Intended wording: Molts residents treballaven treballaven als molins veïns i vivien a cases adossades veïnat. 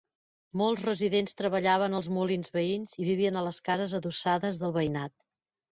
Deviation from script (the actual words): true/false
true